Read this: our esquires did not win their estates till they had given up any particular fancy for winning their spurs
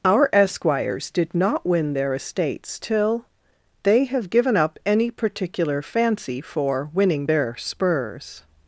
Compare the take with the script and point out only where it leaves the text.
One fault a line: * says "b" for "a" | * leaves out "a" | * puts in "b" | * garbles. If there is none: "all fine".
* says "have" for "had"